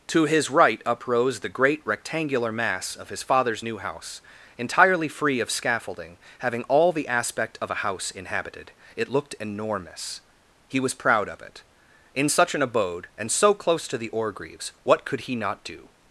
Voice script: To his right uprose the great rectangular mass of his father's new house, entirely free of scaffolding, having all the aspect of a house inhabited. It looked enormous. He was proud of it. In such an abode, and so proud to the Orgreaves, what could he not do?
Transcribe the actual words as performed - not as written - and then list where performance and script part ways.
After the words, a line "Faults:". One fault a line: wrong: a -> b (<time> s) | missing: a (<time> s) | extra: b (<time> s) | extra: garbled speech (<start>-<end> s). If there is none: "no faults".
To his right uprose the great rectangular mass of his father's new house, entirely free of scaffolding, having all the aspect of a house inhabited. It looked enormous. He was proud of it. In such an abode, and so close to the Orgreaves, what could he not do?
Faults:
wrong: proud -> close (13.5 s)